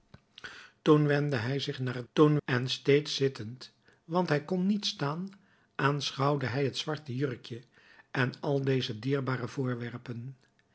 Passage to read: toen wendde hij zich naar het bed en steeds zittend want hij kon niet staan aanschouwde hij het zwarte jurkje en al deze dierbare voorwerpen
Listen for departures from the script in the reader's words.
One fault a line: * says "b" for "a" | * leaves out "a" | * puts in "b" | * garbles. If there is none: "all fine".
* says "toen" for "bed"